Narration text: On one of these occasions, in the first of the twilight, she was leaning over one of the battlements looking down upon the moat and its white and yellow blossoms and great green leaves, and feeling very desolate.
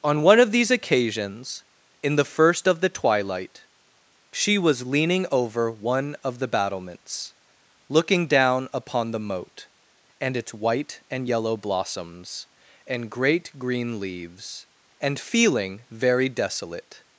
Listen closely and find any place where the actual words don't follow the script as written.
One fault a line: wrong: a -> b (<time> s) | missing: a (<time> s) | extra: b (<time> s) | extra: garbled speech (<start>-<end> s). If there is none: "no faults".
no faults